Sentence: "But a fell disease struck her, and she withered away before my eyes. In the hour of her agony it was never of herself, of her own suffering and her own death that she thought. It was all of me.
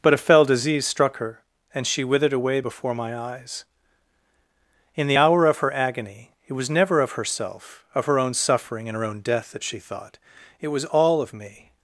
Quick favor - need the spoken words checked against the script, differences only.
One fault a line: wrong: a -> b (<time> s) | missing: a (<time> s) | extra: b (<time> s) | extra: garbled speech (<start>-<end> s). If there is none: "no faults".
no faults